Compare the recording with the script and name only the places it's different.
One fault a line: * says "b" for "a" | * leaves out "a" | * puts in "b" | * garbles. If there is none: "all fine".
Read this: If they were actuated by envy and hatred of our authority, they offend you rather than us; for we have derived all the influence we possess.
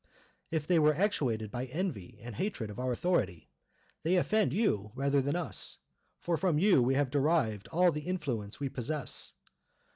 * puts in "from you"